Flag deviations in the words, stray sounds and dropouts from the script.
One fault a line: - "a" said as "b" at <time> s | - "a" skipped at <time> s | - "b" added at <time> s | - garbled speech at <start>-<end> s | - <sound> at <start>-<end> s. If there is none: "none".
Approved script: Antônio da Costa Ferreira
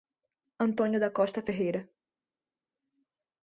none